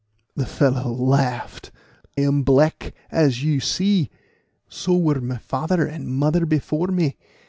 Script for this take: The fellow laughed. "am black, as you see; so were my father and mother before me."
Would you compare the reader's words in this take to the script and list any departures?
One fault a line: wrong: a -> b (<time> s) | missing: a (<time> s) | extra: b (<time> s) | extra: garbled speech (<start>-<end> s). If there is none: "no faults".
no faults